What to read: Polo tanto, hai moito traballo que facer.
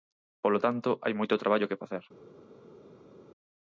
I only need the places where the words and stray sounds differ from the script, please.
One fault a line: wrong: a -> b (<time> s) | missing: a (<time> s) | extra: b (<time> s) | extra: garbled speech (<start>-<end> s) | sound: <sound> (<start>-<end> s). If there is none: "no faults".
no faults